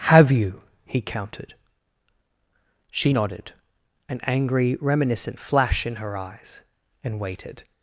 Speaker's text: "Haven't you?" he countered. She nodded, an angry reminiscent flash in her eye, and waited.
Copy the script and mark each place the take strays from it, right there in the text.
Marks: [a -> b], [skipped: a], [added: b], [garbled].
["Haven't -> Have] you?" he countered. She nodded, an angry reminiscent flash in her [eye, -> eyes] and waited.